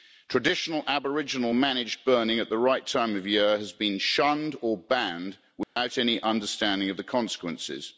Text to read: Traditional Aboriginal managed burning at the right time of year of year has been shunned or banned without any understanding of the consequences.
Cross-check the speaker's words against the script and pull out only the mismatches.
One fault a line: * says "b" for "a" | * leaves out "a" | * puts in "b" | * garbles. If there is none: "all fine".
* leaves out "of year"